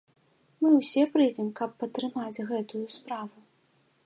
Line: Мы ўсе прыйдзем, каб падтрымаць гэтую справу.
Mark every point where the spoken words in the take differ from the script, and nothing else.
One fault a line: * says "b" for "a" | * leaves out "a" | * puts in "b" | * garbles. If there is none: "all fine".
all fine